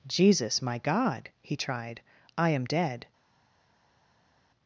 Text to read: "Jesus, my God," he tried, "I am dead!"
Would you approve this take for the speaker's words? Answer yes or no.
yes